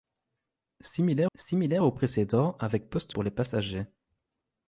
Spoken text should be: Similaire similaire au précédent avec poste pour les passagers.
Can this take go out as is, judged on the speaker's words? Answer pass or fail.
pass